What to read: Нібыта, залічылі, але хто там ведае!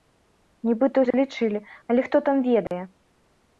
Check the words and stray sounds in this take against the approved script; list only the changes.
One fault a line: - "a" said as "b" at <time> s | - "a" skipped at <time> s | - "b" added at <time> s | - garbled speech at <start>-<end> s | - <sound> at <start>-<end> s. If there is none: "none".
- dropout at 1.1-1.1 s
- dropout at 2.7-2.7 s